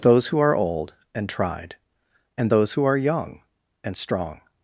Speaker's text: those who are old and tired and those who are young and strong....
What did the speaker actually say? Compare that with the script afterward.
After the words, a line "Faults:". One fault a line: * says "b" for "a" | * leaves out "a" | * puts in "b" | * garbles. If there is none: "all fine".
those who are old and tried and those who are young and strong....
Faults:
* says "tried" for "tired"